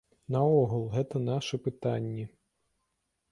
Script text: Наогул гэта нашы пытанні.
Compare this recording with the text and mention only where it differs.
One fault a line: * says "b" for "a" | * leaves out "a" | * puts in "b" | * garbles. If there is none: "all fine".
all fine